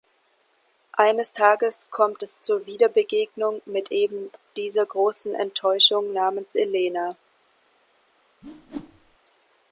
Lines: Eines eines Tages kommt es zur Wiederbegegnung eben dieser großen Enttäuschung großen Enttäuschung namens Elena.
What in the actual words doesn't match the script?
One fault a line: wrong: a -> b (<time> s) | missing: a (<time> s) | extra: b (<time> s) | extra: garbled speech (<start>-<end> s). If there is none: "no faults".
missing: eines (1.4 s)
extra: mit (3.6 s)
missing: großen Enttäuschung (6.1 s)